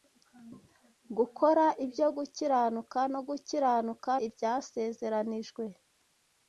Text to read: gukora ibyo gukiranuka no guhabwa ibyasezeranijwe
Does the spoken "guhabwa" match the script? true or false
false